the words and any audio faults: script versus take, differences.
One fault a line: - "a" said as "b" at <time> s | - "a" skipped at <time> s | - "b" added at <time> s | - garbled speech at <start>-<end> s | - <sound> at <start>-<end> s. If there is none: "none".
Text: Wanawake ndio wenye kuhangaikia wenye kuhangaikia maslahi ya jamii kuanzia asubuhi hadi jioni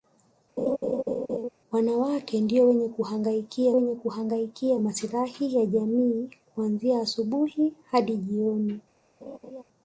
- laugh at 0.6-1.5 s
- laugh at 9.2-9.6 s